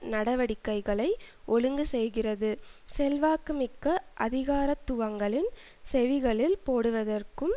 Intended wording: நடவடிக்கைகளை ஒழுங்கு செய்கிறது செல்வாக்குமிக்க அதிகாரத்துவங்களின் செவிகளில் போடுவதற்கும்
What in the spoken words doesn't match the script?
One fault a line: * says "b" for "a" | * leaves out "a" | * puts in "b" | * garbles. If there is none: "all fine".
all fine